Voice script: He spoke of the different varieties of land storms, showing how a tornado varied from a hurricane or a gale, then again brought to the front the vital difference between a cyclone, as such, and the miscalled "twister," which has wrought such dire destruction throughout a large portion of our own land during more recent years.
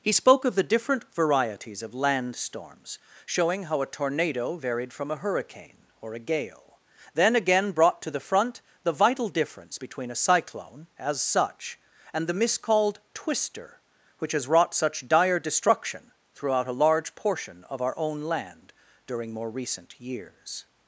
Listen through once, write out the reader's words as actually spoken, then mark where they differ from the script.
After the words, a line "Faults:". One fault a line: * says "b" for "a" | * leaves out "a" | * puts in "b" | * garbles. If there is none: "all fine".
He spoke of the different varieties of land storms, showing how a tornado varied from a hurricane or a gale, then again brought to the front the vital difference between a cyclone, as such, and the miscalled "twister," which has wrought such dire destruction throughout a large portion of our own land during more recent years.
Faults:
all fine